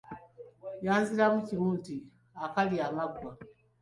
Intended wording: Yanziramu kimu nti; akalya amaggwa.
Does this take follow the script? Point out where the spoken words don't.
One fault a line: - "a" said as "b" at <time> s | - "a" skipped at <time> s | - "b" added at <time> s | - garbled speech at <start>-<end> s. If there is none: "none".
none